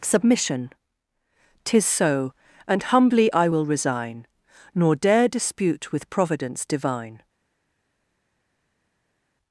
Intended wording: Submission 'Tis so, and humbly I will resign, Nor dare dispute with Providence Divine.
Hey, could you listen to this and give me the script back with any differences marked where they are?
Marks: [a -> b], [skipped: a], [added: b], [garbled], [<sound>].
Submission 'Tis so, and humbly I will resign, Nor dare dispute with Providence Divine.